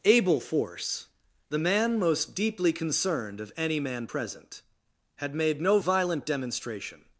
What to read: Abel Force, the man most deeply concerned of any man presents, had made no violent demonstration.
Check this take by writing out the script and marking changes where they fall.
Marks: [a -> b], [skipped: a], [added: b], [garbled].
Abel Force, the man most deeply concerned of any man [presents, -> present] had made no violent demonstration.